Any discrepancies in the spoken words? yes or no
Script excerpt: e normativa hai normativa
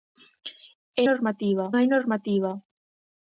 no